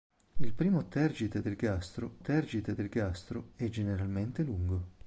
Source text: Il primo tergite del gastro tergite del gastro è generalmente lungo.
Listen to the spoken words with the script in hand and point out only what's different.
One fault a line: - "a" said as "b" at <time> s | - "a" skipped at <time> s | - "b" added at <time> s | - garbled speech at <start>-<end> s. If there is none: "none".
none